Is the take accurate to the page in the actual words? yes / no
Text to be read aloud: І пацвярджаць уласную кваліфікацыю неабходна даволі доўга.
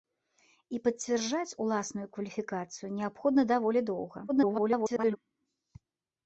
no